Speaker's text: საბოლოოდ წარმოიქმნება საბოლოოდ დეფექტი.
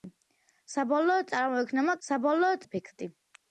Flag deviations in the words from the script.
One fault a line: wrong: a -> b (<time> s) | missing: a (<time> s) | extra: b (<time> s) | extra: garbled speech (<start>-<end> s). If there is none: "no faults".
no faults